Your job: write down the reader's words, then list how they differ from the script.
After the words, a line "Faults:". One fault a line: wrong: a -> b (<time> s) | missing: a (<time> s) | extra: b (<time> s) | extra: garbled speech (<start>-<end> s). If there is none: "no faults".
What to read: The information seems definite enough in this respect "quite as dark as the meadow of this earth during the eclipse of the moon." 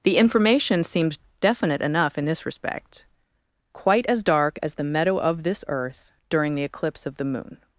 The information seems definite enough in this respect "quite as dark as the meadow of this earth during the eclipse of the moon."
Faults:
no faults